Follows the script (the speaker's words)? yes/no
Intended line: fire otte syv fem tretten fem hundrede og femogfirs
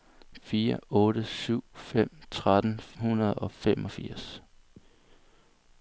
no